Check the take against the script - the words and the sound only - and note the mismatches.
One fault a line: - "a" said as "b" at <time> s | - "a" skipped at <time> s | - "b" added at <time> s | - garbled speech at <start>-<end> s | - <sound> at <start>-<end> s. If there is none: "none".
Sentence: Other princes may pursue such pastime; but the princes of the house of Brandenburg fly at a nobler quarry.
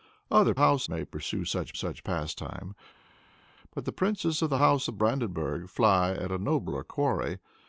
- "princes" said as "house" at 0.6 s
- "such" added at 1.7 s